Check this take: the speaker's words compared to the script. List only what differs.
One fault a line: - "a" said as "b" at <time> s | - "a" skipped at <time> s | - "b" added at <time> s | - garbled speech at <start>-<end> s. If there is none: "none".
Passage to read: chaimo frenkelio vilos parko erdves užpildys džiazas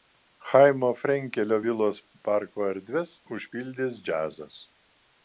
none